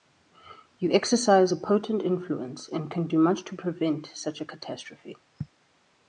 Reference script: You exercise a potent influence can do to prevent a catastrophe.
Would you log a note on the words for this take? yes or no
yes